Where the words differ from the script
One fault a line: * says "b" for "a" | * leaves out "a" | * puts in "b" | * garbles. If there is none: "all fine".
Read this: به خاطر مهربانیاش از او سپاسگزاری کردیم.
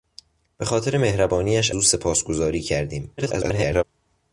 * leaves out "از"
* garbles